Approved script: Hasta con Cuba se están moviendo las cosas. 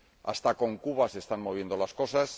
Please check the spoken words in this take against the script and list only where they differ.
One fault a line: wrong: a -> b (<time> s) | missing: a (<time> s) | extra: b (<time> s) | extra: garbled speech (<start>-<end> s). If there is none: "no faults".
no faults